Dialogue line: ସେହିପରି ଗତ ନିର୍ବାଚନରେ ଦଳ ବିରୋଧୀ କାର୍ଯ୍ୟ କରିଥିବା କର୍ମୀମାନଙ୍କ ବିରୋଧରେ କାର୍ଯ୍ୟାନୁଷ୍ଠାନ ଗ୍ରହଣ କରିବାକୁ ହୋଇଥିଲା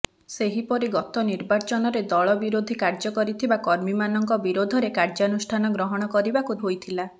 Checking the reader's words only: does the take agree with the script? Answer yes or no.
yes